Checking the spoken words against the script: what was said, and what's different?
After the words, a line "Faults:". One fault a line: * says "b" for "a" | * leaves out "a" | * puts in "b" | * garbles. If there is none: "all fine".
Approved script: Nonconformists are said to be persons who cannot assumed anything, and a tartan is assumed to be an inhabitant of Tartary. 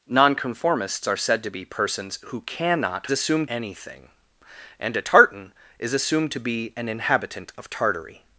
Nonconformists are said to be persons who cannot assumed anything, and a tartan is assumed to be an inhabitant of Tartary.
Faults:
all fine